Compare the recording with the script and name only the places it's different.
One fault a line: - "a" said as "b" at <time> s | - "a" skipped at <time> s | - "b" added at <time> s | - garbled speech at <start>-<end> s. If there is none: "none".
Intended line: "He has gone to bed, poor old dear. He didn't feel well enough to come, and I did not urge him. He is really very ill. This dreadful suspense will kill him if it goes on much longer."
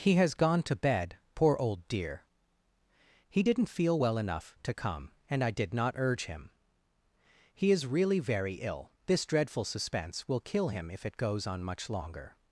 none